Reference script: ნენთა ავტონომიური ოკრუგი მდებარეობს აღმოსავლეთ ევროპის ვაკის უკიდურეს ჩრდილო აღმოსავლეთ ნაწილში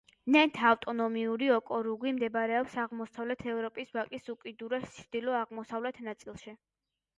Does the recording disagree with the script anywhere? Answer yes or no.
no